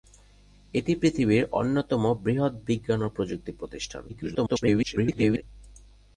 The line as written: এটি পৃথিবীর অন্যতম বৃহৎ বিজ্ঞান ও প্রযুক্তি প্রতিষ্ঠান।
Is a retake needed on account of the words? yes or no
yes